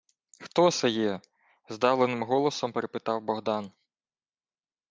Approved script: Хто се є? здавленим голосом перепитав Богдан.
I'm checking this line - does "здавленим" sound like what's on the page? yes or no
yes